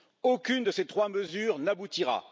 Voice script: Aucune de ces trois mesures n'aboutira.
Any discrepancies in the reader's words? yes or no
no